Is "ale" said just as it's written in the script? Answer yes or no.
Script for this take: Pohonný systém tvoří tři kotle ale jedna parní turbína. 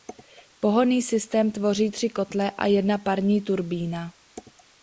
no